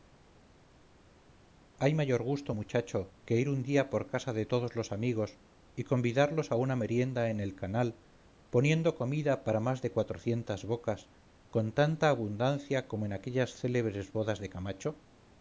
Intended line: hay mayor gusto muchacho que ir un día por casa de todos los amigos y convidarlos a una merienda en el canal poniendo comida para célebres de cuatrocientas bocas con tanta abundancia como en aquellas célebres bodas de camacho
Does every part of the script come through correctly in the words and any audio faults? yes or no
no